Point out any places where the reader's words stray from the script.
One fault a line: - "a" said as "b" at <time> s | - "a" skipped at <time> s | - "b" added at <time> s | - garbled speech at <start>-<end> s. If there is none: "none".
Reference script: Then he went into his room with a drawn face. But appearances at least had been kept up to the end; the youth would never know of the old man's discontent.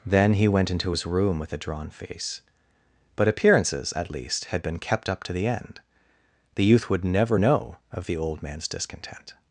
none